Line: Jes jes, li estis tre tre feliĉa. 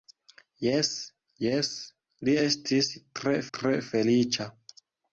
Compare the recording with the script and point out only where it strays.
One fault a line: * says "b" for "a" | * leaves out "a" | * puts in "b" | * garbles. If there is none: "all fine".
all fine